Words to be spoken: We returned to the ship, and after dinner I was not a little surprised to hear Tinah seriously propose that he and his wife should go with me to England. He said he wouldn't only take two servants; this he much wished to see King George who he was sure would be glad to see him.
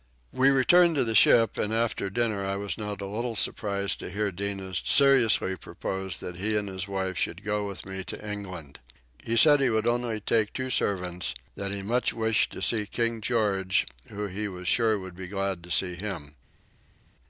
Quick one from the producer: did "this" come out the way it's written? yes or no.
no